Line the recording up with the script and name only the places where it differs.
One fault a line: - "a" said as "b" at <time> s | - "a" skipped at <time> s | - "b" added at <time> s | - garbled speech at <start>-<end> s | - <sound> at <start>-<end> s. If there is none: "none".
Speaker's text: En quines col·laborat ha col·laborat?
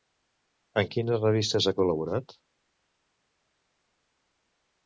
- "col·laborat" said as "revistes" at 1.3 s